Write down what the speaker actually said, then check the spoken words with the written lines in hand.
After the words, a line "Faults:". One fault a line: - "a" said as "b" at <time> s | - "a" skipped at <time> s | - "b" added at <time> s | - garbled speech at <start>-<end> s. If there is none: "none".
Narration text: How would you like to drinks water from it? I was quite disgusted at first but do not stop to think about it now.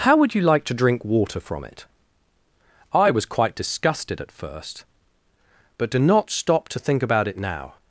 How would you like to drink water from it? I was quite disgusted at first but do not stop to think about it now.
Faults:
- "drinks" said as "drink" at 0.7 s